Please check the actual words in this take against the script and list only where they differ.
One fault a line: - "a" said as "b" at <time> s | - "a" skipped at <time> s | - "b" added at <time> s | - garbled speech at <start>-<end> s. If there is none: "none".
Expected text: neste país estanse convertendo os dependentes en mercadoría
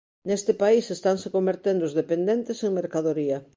none